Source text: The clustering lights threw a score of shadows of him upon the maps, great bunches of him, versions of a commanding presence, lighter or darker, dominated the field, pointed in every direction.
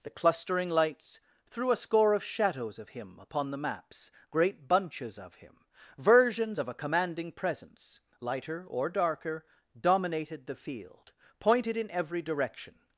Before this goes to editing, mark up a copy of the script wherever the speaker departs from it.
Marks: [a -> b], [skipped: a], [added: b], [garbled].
The clustering lights threw a score of shadows of him upon the maps, great bunches of him, versions of a commanding presence, lighter or darker, dominated the field, pointed in every direction.